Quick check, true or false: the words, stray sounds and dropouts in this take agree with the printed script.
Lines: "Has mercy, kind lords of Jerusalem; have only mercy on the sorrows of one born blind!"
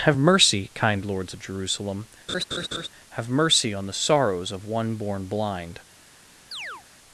false